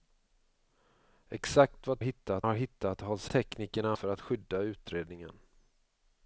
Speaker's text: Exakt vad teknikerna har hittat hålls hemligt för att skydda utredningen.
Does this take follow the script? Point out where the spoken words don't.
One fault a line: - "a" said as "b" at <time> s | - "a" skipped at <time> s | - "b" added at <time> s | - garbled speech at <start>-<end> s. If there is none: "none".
- "teknikerna" said as "hittat" at 2.0 s
- "hemligt" said as "teknikerna" at 3.3 s